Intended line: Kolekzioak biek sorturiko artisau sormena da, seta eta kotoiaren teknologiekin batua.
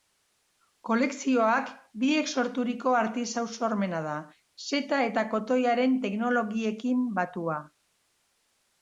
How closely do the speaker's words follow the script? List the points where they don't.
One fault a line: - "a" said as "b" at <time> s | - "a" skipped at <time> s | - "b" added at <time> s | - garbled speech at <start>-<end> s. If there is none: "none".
none